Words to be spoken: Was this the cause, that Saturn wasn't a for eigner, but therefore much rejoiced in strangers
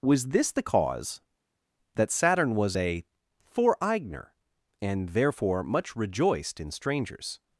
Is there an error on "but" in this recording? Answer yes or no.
yes